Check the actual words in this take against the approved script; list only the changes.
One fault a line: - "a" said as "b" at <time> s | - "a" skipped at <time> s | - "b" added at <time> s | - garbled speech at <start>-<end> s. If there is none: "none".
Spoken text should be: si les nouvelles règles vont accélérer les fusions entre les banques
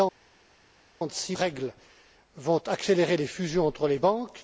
- "les nouvelles" skipped at 1.3 s